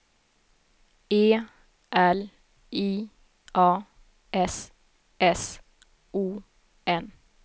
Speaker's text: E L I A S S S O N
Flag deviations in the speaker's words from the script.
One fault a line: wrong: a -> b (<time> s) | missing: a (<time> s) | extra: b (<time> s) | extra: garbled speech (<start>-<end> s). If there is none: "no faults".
missing: S (5.6 s)